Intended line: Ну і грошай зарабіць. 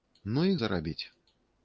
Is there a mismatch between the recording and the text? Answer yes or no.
yes